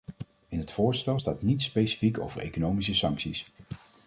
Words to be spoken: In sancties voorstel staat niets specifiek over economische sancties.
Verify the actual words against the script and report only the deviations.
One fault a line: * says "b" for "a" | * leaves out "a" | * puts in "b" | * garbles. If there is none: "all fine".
* says "het" for "sancties"